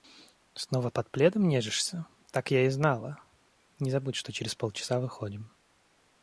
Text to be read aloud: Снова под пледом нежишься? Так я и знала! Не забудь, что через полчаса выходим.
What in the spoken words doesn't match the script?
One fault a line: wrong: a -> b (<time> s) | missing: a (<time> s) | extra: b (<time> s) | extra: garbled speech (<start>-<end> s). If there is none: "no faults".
no faults